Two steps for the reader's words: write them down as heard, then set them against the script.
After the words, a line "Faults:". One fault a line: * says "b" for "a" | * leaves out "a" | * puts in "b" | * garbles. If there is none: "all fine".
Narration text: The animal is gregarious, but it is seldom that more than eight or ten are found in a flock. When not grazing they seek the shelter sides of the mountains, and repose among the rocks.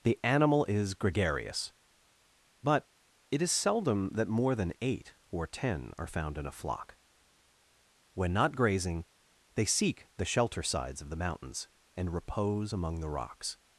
The animal is gregarious, but it is seldom that more than eight or ten are found in a flock. When not grazing they seek the shelter sides of the mountains, and repose among the rocks.
Faults:
all fine